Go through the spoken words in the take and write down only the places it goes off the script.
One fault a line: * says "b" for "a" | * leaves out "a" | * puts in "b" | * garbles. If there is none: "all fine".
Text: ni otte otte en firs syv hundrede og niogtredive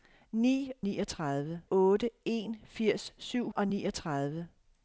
* says "niogtredive" for "otte"
* leaves out "hundrede"